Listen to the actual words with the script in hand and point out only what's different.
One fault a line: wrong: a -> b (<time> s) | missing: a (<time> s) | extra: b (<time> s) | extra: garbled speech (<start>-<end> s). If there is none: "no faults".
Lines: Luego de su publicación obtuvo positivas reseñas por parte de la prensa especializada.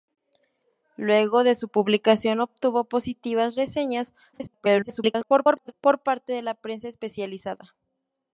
extra: garbled speech (4.3-5.7 s)